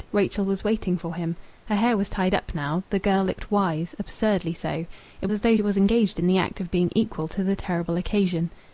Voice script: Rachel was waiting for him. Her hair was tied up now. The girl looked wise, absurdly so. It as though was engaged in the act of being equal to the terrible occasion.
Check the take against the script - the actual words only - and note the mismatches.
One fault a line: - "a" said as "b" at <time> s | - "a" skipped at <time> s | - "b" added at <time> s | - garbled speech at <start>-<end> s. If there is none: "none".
none